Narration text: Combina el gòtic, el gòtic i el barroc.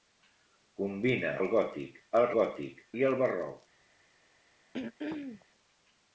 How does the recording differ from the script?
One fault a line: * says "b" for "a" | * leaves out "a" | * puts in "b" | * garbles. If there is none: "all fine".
all fine